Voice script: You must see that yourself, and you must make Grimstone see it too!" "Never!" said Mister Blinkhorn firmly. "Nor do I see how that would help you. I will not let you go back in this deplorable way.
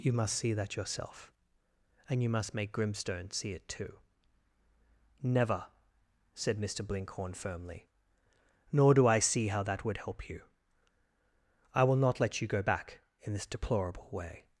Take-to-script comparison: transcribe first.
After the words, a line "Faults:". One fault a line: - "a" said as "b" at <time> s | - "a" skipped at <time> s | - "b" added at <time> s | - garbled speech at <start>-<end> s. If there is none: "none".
You must see that yourself, and you must make Grimstone see it too!" "Never!" said Mister Blinkhorn firmly. "Nor do I see how that would help you. I will not let you go back in this deplorable way.
Faults:
none